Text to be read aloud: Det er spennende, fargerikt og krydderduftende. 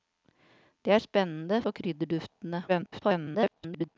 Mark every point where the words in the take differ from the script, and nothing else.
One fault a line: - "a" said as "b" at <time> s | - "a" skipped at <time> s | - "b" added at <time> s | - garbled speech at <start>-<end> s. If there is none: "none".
- "fargerikt" skipped at 1.6 s
- garbled speech at 2.7-4.0 s